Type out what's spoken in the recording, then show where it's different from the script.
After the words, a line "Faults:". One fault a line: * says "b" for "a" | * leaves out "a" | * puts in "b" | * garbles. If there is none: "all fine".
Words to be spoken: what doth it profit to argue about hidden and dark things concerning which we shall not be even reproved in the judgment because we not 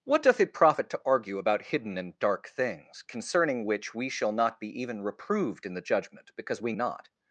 what doth it profit to argue about hidden and dark things concerning which we shall not be even reproved in the judgment because we not
Faults:
all fine